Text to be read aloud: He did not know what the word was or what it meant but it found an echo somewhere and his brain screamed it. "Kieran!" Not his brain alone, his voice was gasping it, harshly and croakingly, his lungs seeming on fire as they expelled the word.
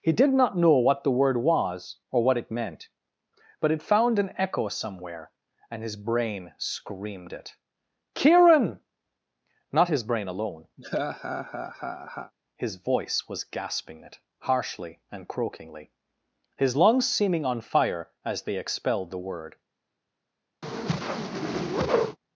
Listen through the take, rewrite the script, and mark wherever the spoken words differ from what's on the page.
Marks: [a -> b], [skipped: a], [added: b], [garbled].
He did not know what the word was or what it meant but it found an echo somewhere and his brain screamed it. "Kieran!" Not his brain alone, his voice was gasping it, harshly and croakingly, his lungs seeming on fire as they expelled the word.